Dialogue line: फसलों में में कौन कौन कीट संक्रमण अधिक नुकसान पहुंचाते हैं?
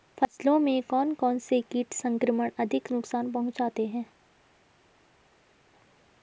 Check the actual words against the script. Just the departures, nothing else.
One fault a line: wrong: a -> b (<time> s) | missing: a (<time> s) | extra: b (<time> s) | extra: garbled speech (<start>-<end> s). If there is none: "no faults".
wrong: में -> कौन (0.8 s)
wrong: कौन -> से (1.4 s)